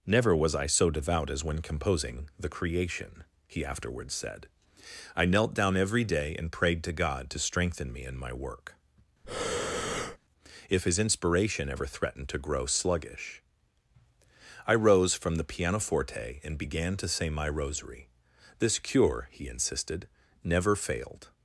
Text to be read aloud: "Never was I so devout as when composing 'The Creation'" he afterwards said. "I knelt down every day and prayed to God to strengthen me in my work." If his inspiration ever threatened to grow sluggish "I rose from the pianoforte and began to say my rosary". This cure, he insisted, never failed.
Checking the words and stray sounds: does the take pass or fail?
fail